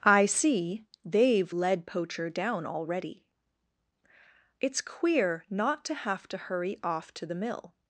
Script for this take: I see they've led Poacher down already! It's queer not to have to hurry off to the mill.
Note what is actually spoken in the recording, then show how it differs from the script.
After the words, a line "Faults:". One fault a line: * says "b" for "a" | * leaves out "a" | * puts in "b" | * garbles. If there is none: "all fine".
I see they've led Poacher down already! It's queer not to have to hurry off to the mill.
Faults:
all fine